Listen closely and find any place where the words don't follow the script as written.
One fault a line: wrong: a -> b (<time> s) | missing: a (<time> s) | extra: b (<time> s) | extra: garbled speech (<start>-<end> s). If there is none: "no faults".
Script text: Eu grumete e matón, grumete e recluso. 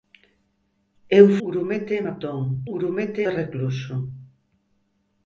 no faults